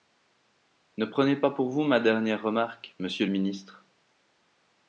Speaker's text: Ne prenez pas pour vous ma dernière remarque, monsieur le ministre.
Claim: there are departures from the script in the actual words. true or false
false